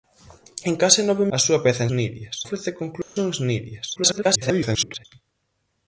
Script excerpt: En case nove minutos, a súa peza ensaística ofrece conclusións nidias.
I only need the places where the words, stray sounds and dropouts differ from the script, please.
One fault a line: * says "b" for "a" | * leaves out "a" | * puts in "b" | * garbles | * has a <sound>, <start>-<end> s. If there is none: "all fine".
* leaves out "minutos"
* says "nidias" for "ensaística"
* has a dropout, 3.0-3.2 s
* garbles